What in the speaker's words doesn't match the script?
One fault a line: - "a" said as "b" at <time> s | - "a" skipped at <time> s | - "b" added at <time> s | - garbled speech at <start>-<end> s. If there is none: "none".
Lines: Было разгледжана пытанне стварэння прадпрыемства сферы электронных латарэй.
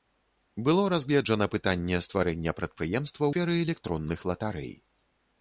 none